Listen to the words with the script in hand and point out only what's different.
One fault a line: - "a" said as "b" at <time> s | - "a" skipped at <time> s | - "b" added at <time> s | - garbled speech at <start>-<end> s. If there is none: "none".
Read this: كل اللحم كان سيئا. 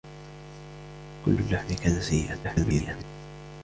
- garbled speech at 2.4-3.0 s